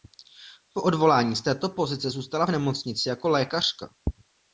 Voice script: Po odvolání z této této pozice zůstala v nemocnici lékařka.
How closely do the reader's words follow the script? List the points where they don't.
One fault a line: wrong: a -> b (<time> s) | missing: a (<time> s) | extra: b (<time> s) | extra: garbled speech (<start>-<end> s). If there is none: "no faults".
missing: této (1.7 s)
extra: jako (3.1 s)